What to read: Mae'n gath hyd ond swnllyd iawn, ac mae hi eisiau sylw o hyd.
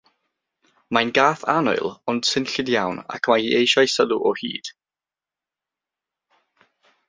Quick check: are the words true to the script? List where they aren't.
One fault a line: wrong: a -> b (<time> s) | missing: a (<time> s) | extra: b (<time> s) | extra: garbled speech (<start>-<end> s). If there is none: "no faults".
wrong: hyd -> annwyl (1.6 s)